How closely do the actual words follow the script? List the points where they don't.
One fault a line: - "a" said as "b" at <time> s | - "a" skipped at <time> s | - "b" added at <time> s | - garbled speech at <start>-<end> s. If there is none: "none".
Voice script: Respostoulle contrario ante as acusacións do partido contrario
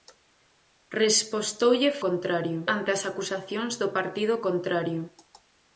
none